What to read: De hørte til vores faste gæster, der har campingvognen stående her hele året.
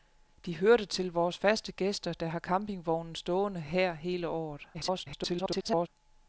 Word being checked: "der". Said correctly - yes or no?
yes